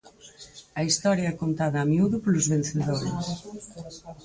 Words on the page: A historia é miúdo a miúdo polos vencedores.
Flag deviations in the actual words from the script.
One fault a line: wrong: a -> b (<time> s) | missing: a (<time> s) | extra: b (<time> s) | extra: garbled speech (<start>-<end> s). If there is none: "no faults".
wrong: miúdo -> contada (1.4 s)